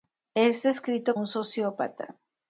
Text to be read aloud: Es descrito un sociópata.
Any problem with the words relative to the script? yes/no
no